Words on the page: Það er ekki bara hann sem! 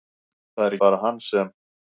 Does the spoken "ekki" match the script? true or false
false